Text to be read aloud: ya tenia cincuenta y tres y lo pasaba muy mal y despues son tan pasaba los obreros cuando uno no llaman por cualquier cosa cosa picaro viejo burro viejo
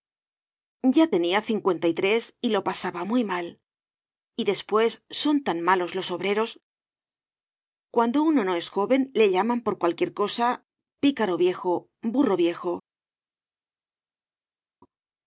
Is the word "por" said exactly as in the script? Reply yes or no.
yes